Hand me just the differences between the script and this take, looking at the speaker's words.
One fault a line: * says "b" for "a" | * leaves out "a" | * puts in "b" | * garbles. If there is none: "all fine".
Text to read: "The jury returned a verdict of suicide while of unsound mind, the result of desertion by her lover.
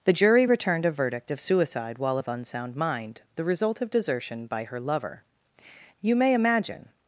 * puts in "You may imagine"